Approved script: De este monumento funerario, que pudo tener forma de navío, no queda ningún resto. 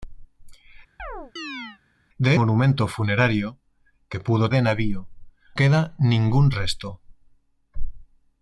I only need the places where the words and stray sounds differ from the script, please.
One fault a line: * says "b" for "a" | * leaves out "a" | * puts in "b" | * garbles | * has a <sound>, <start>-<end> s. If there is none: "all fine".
* has a chirp, 1.0-1.8 s
* leaves out "este"
* leaves out "tener forma"
* leaves out "no"